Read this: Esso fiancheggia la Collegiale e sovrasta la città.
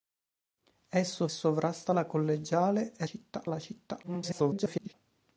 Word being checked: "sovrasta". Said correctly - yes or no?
no